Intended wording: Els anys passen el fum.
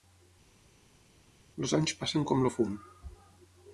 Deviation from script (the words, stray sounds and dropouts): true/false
true